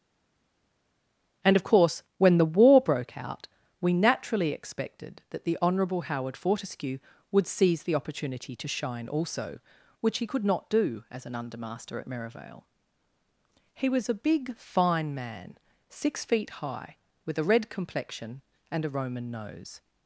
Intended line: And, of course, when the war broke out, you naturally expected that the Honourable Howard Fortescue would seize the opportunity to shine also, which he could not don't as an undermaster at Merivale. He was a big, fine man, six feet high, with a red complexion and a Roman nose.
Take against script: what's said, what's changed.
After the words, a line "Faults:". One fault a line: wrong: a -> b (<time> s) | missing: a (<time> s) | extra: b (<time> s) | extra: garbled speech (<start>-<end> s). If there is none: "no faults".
And, of course, when the war broke out, we naturally expected that the Honourable Howard Fortescue would seize the opportunity to shine also, which he could not do as an undermaster at Merivale. He was a big, fine man, six feet high, with a red complexion and a Roman nose.
Faults:
wrong: you -> we (3.8 s)
wrong: don't -> do (10.7 s)